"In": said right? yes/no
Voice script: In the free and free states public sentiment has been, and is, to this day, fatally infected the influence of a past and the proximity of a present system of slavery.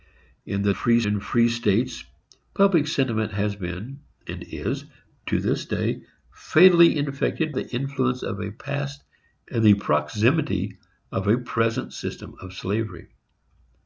yes